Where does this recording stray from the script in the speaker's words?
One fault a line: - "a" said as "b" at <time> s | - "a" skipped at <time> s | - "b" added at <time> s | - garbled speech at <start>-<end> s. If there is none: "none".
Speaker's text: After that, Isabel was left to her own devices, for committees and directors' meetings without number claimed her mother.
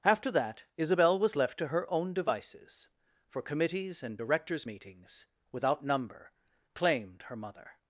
none